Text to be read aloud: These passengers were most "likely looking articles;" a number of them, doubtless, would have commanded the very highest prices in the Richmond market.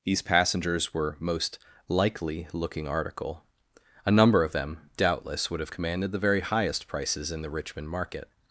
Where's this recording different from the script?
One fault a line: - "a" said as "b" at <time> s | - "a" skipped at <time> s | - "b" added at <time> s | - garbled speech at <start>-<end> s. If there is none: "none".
- "articles" said as "article" at 2.9 s